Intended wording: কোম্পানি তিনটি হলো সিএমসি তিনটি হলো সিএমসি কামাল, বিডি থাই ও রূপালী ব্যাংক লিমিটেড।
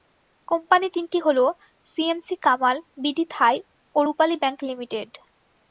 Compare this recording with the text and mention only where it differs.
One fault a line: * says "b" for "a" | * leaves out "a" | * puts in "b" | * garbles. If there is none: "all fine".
* leaves out "তিনটি হলো সিএমসি"